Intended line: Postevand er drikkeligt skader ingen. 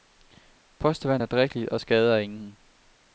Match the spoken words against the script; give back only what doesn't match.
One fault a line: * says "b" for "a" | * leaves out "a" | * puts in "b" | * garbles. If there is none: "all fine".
* puts in "og"